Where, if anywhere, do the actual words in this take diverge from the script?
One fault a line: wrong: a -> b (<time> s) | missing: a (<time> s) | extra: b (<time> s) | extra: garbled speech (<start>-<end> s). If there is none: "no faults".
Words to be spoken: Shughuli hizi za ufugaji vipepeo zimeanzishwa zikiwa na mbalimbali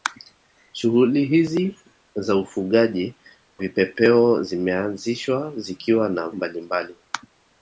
no faults